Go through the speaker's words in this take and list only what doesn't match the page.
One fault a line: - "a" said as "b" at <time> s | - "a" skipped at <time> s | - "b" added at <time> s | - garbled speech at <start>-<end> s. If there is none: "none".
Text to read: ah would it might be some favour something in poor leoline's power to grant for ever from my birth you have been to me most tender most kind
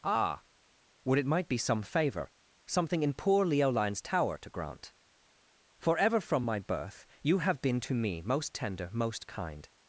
- "power" said as "tower" at 4.0 s